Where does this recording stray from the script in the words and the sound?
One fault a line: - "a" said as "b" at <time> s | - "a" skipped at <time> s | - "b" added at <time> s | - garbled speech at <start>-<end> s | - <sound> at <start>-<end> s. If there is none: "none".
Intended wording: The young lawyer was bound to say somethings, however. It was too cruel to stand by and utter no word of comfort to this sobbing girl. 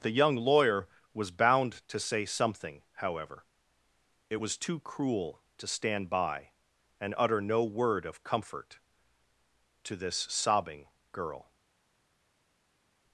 - "somethings" said as "something" at 2.2 s